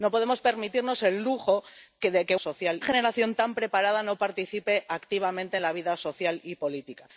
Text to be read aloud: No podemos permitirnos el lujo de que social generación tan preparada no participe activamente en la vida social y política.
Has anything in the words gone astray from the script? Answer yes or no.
no